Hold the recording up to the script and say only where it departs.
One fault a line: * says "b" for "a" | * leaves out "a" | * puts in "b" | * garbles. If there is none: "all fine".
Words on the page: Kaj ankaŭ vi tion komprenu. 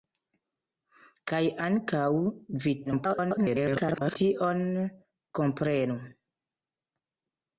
* garbles